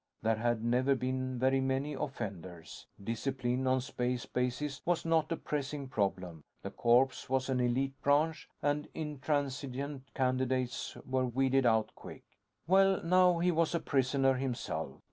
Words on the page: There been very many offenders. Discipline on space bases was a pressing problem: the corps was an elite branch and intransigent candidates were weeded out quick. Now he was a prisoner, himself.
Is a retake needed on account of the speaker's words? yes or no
yes